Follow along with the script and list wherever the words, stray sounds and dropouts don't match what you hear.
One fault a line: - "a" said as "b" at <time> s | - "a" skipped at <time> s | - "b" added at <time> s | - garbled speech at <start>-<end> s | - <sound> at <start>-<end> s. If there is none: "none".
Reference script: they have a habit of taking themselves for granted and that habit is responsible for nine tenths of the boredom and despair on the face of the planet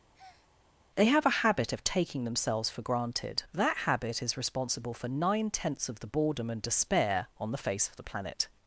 - breath at 0.1-0.5 s
- "and" skipped at 3.4 s